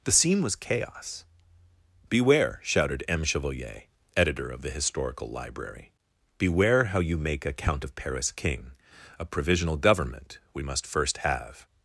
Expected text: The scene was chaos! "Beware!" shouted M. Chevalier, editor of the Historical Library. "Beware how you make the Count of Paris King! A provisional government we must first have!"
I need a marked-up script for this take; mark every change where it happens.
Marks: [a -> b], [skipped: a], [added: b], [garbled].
The scene was chaos! "Beware!" shouted M. Chevalier, editor of the Historical Library. "Beware how you make [the -> a] Count of Paris King! A provisional government we must first have!"